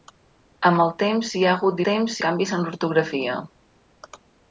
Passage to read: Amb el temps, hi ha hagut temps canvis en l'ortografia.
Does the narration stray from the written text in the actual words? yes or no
no